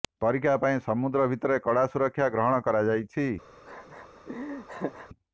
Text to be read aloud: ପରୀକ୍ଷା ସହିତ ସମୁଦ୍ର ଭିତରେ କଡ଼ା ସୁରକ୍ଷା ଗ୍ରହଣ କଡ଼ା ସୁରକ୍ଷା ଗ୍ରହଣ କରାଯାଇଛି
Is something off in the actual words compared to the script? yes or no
yes